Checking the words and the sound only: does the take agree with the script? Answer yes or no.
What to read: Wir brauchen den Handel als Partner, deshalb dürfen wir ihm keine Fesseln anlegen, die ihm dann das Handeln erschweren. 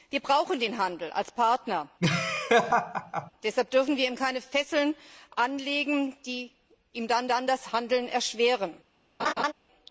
no